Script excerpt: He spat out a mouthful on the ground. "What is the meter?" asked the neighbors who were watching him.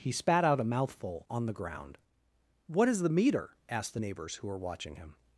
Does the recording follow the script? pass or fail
pass